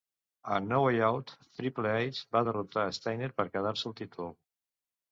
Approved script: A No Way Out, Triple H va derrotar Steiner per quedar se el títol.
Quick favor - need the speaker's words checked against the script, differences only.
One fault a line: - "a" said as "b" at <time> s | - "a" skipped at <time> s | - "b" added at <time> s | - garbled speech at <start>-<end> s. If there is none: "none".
none